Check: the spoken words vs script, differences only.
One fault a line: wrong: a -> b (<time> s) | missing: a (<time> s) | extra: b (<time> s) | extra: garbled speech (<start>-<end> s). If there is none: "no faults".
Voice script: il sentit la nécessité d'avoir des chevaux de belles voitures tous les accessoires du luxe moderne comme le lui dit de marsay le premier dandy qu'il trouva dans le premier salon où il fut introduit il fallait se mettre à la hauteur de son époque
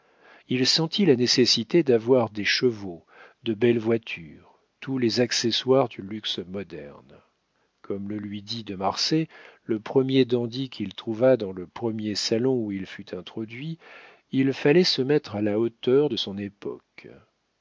no faults